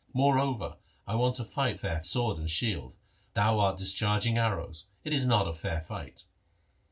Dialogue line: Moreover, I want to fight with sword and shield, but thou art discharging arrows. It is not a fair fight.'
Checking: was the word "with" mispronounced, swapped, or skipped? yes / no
yes